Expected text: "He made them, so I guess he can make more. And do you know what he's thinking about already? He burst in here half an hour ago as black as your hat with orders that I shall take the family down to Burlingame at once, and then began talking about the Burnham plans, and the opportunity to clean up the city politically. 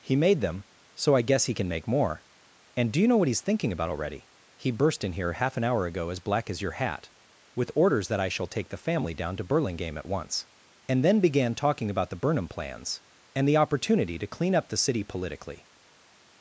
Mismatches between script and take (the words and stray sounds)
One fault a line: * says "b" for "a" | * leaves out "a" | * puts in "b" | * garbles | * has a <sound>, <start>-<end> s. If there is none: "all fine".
all fine